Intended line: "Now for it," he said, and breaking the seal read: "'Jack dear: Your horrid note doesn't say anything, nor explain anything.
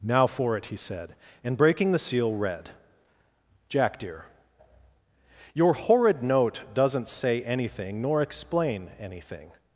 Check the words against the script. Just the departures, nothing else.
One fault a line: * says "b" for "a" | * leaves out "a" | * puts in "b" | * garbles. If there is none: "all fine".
all fine